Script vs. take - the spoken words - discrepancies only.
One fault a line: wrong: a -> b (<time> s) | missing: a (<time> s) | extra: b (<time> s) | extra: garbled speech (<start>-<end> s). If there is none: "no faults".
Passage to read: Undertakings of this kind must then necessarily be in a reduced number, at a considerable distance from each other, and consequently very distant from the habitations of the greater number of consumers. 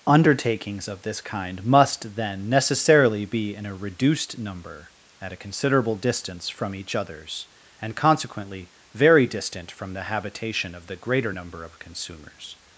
wrong: other -> others (7.0 s)
wrong: habitations -> habitation (10.0 s)